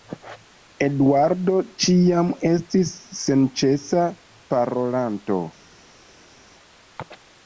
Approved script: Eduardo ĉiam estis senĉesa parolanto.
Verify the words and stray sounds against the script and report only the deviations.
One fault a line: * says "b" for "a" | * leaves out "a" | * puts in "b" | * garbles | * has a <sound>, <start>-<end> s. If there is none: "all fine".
all fine